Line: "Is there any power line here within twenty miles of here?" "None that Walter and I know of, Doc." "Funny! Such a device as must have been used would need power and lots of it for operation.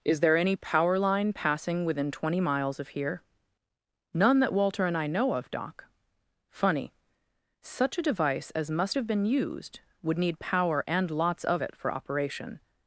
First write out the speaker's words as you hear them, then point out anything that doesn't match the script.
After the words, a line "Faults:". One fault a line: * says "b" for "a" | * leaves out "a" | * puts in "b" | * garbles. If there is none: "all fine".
"Is there any power line passing within twenty miles of here?" "None that Walter and I know of, Doc." "Funny! Such a device as must have been used would need power and lots of it for operation.
Faults:
* says "passing" for "here"